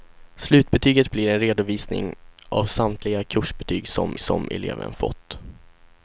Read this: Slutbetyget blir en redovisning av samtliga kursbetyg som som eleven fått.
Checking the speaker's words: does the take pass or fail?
pass